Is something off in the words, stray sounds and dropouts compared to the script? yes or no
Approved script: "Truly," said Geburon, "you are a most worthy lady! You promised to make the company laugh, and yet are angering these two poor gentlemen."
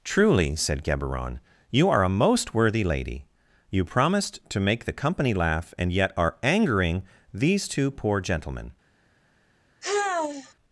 yes